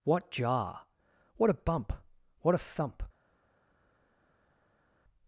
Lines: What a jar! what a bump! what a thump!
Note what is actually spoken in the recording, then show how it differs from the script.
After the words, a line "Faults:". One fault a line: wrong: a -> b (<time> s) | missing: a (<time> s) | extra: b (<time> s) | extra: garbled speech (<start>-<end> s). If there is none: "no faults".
What jar! what a bump! what a thump!
Faults:
missing: a (0.3 s)